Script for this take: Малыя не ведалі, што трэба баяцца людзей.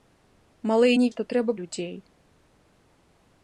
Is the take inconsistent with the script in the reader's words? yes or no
yes